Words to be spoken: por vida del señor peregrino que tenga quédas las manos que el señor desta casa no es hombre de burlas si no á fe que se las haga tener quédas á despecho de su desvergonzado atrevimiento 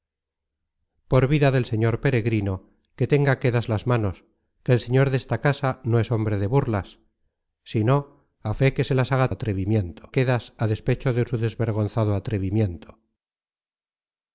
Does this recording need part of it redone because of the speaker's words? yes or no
yes